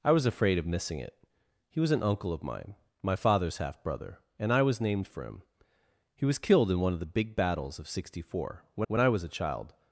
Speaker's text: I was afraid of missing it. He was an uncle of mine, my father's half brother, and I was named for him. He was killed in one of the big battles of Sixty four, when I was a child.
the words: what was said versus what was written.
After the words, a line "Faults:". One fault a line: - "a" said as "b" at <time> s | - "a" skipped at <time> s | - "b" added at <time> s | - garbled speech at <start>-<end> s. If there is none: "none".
I was afraid of missing it. He was an uncle of mine, my father's half brother, and I was named for him. He was killed in one of the big battles of Sixty four, when when I was a child.
Faults:
- "when" added at 8.9 s